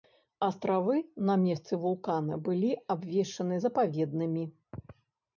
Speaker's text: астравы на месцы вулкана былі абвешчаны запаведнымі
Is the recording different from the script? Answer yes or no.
no